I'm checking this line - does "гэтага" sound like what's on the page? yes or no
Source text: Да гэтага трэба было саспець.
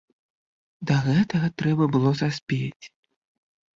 yes